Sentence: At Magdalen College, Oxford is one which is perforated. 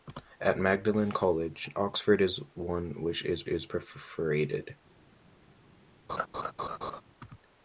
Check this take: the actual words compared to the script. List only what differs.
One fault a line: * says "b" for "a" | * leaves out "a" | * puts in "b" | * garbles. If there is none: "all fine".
* puts in "is"